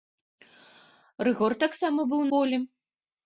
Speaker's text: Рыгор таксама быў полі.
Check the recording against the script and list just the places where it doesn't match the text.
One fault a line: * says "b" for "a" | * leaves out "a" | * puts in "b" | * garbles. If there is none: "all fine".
all fine